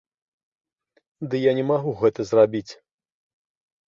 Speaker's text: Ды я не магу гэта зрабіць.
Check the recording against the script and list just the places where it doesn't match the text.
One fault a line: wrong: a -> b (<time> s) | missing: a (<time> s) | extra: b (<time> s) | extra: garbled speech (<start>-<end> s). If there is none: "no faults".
no faults